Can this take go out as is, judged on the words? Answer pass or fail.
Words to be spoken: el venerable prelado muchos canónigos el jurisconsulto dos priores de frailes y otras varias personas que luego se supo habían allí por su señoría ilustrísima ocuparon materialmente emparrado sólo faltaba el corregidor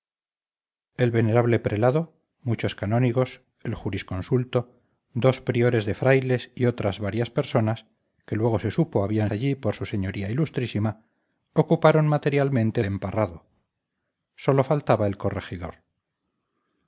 pass